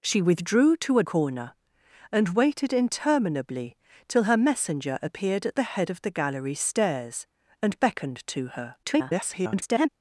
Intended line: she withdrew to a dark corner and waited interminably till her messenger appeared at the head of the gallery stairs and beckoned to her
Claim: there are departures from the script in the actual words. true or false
true